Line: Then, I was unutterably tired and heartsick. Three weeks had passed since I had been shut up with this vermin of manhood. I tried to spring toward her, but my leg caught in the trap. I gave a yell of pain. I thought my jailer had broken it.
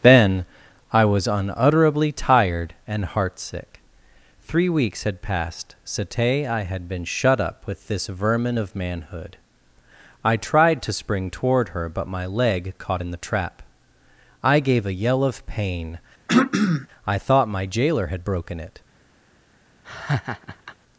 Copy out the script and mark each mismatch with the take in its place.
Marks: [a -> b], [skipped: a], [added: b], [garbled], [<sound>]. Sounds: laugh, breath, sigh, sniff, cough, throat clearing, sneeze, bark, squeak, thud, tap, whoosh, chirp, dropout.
Then, I was unutterably tired and heartsick. Three weeks had passed [since -> sate] I had been shut up with this vermin of manhood. I tried to spring toward her, but my leg caught in the trap. I gave a yell of pain. [throat clearing] I thought my jailer had broken it. [laugh]